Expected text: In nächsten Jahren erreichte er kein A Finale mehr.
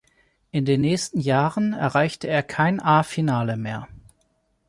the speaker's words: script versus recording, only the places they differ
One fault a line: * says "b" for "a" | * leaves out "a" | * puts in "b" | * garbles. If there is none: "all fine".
* puts in "den"